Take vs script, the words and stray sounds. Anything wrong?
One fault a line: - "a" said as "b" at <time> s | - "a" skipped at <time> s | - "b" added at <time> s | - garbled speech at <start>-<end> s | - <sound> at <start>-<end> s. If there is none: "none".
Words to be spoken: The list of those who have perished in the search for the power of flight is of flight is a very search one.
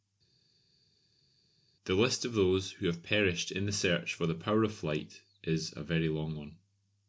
- "of flight is" skipped at 5.7 s
- "search" said as "long" at 6.1 s